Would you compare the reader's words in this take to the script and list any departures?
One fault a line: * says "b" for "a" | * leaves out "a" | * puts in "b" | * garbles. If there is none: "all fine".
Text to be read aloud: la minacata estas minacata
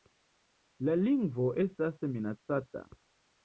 * says "lingvo" for "minacata"